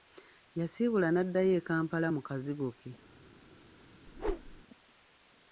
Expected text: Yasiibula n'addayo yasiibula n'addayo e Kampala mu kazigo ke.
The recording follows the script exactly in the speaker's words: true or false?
false